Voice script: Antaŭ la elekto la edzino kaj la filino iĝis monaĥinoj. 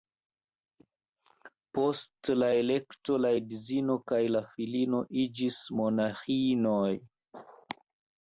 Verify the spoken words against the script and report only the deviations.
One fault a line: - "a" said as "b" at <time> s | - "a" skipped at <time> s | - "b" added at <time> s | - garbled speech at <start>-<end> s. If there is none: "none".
- "Antaŭ" said as "Post" at 1.8 s